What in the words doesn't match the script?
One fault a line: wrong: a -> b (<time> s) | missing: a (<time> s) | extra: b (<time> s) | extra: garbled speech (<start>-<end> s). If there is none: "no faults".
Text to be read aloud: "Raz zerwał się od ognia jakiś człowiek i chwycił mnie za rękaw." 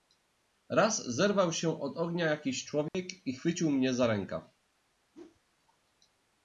no faults